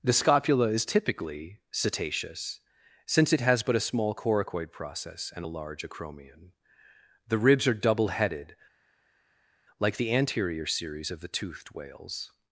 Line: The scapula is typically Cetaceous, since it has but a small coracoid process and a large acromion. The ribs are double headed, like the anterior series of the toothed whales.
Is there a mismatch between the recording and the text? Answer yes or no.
no